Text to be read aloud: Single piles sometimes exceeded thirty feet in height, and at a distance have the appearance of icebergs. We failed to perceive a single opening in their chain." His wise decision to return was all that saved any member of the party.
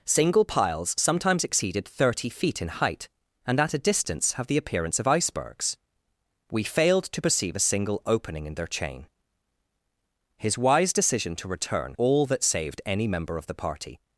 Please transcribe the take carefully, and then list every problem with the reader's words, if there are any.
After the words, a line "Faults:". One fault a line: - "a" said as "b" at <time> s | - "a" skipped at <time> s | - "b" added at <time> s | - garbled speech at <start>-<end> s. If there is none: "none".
Single piles sometimes exceeded thirty feet in height, and at a distance have the appearance of icebergs. We failed to perceive a single opening in their chain." His wise decision to return all that saved any member of the party.
Faults:
- "was" skipped at 12.0 s